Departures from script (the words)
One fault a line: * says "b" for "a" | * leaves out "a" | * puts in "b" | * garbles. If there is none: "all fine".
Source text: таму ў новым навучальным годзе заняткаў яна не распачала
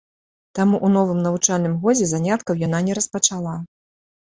all fine